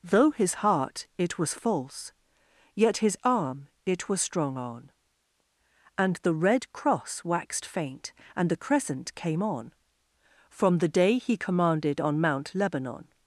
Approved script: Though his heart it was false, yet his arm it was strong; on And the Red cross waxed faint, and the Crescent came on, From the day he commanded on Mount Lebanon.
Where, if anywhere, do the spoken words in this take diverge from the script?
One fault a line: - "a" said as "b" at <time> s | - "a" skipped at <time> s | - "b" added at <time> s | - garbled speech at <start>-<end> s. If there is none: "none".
none